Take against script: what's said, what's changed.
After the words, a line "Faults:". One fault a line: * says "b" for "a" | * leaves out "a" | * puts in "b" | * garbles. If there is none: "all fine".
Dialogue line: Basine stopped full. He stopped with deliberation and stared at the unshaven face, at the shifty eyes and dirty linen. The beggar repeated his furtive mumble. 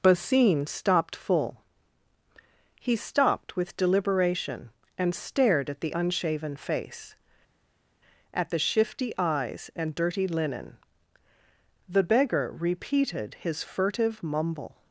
Basine stopped full. He stopped with deliberation and stared at the unshaven face, at the shifty eyes and dirty linen. The beggar repeated his furtive mumble.
Faults:
all fine